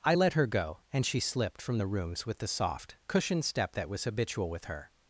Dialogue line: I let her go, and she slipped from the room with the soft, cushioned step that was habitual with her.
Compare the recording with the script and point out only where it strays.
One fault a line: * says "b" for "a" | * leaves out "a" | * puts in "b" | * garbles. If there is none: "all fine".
* says "rooms" for "room"